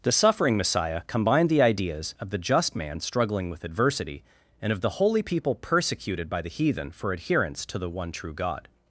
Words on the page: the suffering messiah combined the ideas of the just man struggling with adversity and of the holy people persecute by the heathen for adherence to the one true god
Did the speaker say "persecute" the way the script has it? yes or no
no